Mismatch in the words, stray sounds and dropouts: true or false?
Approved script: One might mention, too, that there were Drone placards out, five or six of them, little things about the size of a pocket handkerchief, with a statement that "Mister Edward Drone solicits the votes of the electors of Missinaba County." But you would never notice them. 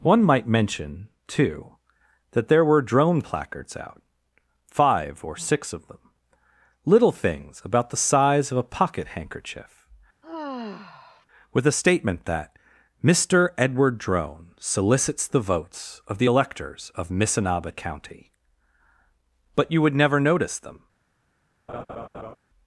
true